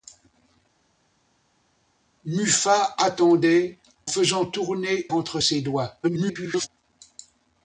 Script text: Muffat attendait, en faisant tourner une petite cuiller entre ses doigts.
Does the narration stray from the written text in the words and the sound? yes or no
yes